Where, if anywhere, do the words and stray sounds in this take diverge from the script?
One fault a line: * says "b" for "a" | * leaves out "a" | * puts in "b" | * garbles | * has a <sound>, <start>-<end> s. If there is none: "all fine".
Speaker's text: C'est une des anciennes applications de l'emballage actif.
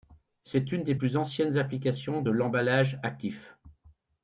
* puts in "plus"